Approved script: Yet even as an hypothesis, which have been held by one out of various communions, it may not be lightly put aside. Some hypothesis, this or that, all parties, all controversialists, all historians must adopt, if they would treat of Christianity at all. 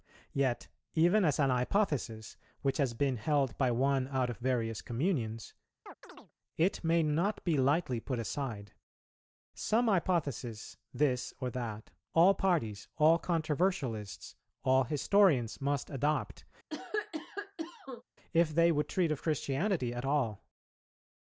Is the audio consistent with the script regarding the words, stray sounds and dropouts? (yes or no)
no